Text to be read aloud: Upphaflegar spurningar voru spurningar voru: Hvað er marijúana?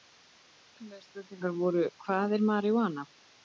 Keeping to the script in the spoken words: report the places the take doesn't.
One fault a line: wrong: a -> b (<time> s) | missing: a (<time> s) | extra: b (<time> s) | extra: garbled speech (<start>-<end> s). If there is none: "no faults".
missing: spurningar voru (1.9 s)